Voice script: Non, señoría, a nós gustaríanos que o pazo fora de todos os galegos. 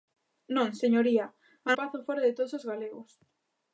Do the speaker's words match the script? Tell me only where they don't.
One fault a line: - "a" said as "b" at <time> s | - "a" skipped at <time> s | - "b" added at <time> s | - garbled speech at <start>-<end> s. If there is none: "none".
- "nós gustaríanos que" skipped at 1.7 s